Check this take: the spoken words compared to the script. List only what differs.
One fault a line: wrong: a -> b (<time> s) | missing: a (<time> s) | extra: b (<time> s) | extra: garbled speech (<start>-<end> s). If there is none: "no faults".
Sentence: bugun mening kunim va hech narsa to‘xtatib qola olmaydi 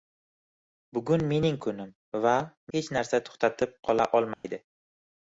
no faults